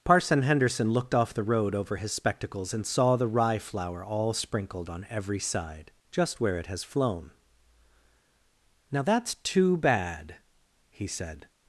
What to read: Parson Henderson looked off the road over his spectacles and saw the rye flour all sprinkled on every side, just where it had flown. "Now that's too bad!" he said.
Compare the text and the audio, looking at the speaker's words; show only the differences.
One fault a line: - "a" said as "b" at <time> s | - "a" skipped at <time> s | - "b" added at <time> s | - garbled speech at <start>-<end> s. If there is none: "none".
- "had" said as "has" at 6.7 s